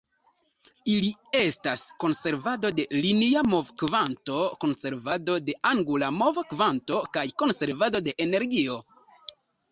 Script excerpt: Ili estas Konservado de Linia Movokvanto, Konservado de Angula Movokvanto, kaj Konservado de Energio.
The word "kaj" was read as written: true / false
true